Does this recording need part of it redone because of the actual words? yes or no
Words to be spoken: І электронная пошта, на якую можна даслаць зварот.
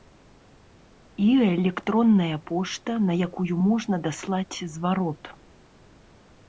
no